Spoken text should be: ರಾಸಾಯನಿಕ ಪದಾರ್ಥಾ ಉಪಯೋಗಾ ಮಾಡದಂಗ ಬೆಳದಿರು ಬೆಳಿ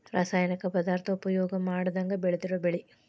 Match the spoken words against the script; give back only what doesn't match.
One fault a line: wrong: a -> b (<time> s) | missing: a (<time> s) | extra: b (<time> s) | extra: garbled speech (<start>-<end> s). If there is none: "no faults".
no faults